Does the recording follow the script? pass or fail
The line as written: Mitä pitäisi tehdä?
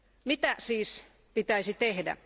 fail